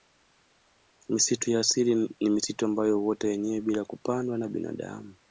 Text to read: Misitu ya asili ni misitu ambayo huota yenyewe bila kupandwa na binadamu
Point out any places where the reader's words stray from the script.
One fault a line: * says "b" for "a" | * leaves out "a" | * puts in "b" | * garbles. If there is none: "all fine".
all fine